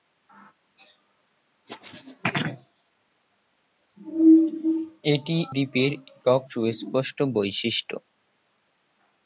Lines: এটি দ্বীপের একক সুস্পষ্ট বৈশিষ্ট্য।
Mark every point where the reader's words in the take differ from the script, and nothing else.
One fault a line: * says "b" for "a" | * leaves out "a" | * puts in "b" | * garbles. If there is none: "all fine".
all fine